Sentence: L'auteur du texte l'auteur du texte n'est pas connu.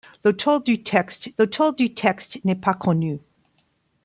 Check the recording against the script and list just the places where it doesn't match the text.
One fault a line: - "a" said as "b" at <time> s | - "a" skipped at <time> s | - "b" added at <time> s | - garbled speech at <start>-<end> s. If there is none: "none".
none